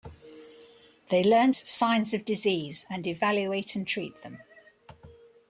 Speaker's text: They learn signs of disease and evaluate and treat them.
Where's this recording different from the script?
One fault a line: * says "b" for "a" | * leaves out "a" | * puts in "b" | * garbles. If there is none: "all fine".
all fine